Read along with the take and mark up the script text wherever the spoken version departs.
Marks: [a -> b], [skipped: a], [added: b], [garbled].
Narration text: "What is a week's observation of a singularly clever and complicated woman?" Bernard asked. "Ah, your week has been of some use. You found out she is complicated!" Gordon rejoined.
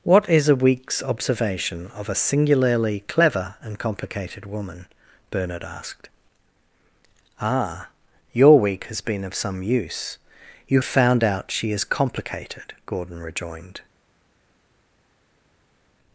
"What is a week's observation of a singularly clever and complicated woman?" Bernard asked. "Ah, your week has been of some use. You found out she is complicated!" Gordon rejoined.